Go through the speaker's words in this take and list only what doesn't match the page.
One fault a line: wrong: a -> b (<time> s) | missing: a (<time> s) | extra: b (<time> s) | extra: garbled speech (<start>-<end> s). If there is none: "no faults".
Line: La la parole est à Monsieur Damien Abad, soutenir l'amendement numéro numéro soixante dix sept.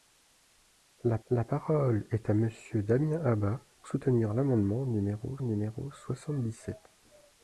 no faults